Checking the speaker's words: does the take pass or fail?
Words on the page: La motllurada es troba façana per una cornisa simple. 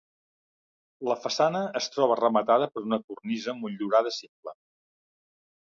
fail